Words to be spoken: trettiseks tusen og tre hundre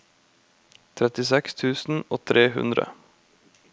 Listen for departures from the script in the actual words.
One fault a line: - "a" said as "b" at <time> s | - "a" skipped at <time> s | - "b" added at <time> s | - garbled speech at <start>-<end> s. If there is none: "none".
none